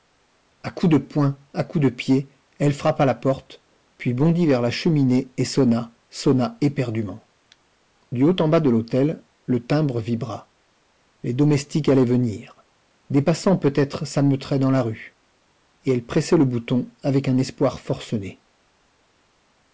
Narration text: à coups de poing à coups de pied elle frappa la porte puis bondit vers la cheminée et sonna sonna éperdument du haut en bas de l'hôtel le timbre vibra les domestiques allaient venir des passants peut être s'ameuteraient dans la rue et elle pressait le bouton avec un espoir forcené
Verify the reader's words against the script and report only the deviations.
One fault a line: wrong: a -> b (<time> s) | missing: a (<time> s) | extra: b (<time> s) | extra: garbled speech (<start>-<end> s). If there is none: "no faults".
no faults